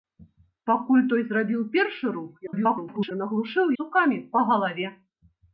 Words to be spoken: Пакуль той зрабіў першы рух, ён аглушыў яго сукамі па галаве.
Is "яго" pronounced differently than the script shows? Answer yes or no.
yes